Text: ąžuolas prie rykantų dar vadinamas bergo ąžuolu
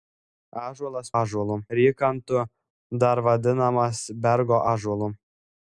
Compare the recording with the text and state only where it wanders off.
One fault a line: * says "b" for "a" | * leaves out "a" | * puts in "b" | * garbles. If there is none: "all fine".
* says "ąžuolu" for "prie"